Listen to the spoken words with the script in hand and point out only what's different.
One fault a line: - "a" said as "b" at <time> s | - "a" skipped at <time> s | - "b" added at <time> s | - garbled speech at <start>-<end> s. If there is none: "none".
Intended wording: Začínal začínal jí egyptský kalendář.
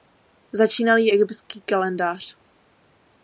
- "začínal" skipped at 1.0 s